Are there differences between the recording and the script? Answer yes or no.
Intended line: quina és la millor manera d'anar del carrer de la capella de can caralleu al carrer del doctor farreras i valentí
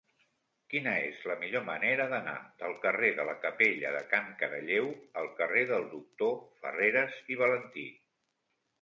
no